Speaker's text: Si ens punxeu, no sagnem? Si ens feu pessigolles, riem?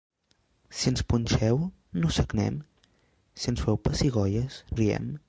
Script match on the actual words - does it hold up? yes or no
yes